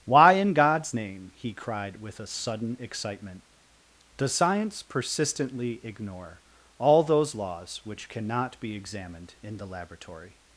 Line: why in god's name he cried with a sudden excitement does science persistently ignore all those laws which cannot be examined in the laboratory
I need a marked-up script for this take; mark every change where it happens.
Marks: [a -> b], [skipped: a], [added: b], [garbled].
why in god's name he cried with a sudden excitement does science persistently ignore all those laws which cannot be examined in the laboratory